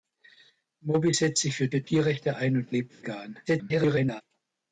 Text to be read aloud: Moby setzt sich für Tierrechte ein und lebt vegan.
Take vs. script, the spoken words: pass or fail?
fail